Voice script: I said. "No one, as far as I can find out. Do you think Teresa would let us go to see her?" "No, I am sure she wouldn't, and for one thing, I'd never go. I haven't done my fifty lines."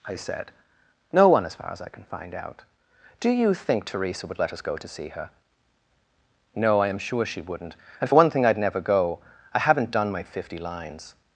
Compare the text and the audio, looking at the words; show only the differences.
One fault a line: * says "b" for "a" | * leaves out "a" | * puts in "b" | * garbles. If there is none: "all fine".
all fine